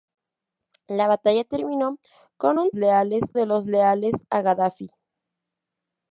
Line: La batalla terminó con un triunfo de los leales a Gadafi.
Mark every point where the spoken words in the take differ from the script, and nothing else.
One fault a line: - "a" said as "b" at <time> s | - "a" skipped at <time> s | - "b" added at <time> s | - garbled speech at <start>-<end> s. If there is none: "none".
- "triunfo" said as "leales" at 2.7 s